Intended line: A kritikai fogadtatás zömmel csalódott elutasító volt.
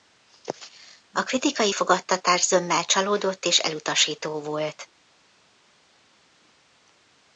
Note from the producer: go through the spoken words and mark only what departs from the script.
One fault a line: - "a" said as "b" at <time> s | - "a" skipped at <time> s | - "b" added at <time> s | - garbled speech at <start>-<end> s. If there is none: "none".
- "és" added at 3.4 s